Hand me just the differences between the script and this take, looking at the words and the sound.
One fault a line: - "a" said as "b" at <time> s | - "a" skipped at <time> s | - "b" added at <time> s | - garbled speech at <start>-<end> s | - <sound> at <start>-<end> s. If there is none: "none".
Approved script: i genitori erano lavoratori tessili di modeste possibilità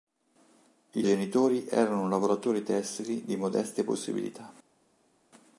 none